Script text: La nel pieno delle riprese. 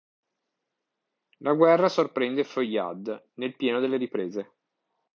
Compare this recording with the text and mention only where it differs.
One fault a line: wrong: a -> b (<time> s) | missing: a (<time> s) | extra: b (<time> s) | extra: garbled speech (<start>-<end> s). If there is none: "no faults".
extra: guerra sorprende Feuillade (1.5 s)